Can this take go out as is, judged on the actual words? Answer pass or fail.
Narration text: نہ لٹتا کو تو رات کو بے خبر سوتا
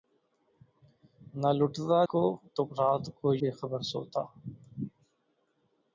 pass